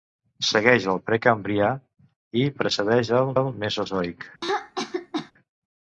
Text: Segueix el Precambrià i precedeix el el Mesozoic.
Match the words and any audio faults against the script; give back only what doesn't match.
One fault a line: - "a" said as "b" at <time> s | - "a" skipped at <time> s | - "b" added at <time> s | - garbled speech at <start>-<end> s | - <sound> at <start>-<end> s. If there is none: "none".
- throat clearing at 4.4-5.3 s